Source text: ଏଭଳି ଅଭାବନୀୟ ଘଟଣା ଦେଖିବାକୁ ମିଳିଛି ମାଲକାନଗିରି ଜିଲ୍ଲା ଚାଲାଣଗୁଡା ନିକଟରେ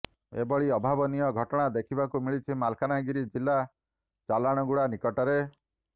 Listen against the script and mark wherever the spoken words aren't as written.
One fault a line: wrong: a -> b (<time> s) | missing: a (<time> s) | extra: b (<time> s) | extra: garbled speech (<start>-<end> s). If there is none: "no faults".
no faults